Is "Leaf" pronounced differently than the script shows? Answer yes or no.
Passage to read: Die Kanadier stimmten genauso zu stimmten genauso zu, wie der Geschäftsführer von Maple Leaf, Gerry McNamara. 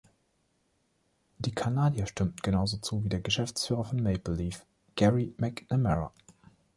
no